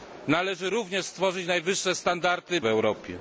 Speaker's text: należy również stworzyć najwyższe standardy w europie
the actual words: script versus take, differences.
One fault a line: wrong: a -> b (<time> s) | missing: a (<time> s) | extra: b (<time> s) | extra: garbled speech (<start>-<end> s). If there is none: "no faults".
no faults